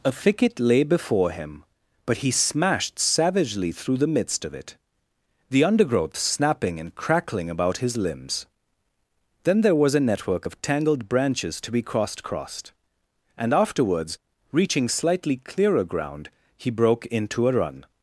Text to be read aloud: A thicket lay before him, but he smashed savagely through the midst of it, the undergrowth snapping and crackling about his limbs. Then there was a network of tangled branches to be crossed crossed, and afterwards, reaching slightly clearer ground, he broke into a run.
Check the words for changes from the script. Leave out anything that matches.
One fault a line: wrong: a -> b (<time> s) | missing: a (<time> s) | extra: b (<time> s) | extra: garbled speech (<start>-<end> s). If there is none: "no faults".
no faults